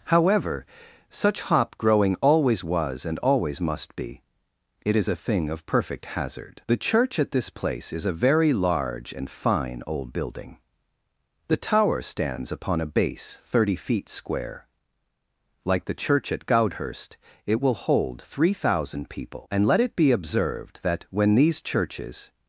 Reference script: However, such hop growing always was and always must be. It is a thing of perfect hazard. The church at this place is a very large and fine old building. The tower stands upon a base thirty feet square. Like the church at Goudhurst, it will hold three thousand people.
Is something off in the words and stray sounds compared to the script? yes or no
yes